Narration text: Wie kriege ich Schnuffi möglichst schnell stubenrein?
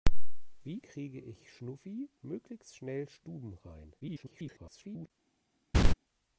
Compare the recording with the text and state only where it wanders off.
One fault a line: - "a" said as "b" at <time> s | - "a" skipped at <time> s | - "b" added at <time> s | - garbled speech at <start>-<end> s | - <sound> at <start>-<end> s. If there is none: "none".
- garbled speech at 4.0-5.1 s
- laugh at 5.7-5.9 s